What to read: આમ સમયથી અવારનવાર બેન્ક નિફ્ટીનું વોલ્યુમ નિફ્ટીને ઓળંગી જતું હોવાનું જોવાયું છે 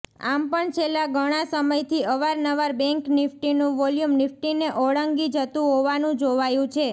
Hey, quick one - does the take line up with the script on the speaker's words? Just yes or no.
no